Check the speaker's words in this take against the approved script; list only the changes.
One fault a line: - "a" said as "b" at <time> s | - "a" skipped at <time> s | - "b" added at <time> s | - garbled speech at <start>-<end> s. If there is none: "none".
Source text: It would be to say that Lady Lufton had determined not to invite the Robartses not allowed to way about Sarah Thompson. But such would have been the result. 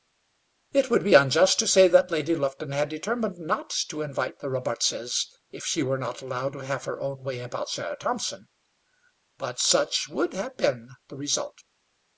- "unjust" added at 1.1 s
- "if she were" added at 5.5 s
- "have her own" added at 6.6 s